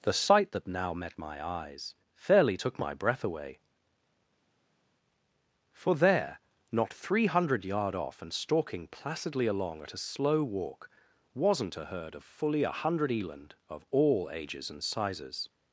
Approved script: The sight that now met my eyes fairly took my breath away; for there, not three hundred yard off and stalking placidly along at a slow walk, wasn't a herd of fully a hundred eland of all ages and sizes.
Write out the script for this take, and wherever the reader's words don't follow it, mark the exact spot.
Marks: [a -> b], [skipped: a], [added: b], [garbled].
The sight that now met my eyes fairly took my breath away; for there, not three hundred yard off and stalking placidly along at a slow walk, wasn't a herd of fully a hundred eland of all ages and sizes.